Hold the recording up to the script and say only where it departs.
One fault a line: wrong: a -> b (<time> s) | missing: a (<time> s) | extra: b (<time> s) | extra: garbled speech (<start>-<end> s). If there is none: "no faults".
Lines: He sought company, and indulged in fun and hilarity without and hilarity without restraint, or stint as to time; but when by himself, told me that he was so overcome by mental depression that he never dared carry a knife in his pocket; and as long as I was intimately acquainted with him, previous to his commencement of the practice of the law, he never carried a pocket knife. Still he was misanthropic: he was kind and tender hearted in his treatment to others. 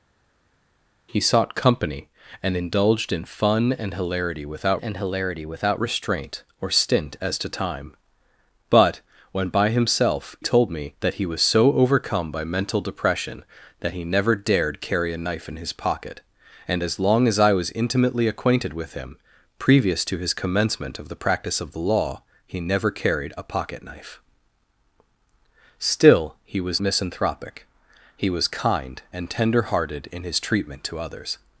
no faults